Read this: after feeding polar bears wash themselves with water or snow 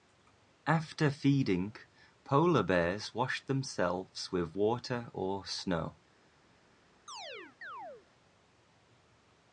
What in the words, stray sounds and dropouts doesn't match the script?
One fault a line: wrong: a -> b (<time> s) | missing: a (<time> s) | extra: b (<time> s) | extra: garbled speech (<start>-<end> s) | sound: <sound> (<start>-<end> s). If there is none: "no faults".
sound: chirp (7.1-8.1 s)